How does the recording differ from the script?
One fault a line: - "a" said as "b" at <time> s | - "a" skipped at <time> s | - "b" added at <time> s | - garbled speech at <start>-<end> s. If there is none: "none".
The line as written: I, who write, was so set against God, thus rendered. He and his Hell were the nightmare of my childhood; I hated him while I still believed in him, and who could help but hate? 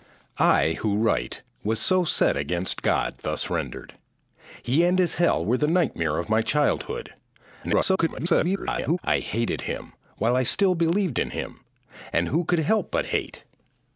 - garbled speech at 7.6-9.0 s